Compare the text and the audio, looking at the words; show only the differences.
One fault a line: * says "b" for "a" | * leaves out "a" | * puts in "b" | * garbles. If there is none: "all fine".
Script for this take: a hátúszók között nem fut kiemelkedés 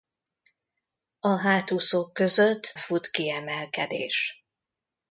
* leaves out "nem"